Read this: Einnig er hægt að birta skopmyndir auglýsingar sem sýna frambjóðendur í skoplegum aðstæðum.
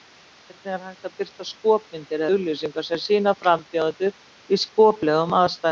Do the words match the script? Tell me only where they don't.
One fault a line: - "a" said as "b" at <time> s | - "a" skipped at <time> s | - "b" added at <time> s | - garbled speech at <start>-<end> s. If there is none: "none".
none